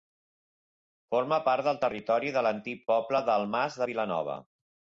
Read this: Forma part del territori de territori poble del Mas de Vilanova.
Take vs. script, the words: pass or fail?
fail